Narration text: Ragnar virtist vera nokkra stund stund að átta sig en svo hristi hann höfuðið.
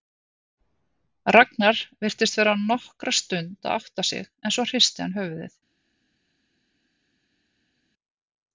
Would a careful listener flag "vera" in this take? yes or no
no